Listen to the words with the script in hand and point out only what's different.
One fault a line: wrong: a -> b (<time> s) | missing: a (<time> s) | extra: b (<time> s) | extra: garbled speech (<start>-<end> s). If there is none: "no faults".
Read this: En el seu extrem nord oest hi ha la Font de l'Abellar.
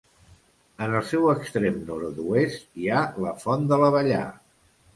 no faults